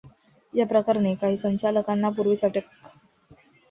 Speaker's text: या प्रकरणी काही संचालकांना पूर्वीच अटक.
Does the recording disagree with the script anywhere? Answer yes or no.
no